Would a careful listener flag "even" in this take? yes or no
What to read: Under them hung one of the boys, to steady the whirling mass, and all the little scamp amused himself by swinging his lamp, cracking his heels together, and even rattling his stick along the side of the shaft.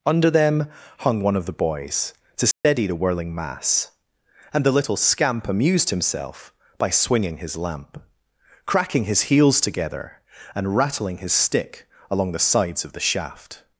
yes